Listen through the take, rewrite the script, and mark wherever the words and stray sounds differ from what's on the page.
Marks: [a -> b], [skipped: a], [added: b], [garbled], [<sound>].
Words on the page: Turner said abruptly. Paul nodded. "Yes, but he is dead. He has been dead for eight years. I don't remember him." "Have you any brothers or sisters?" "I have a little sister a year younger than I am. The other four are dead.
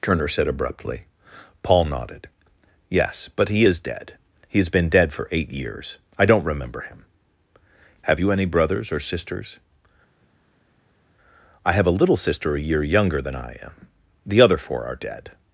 Turner said abruptly. Paul nodded. "Yes, but he is dead. He has been dead for eight years. I don't remember him." "Have you any brothers or sisters?" "I have a little sister a year younger than I am. The other four are dead.